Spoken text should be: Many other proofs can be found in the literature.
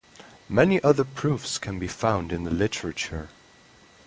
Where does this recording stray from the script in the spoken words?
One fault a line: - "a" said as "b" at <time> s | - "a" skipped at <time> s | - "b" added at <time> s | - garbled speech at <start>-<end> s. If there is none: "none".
none